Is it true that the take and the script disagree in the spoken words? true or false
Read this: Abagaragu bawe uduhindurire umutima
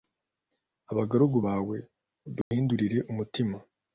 false